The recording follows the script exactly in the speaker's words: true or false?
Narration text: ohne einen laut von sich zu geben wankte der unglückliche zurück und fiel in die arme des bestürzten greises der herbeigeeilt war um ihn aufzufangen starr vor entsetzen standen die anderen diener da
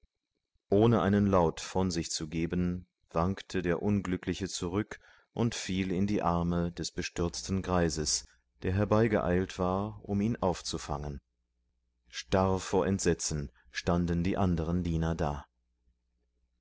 true